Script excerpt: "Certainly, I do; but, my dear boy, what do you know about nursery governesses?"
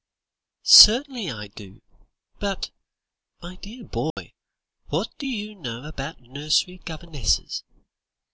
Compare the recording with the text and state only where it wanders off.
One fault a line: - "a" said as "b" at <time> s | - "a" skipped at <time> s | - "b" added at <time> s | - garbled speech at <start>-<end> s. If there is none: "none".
none